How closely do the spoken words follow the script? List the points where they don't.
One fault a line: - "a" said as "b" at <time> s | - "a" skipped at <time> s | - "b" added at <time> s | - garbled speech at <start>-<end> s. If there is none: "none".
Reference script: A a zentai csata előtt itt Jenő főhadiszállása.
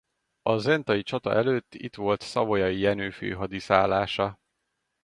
- "a" skipped at 0.6 s
- "volt Savoyai" added at 1.9 s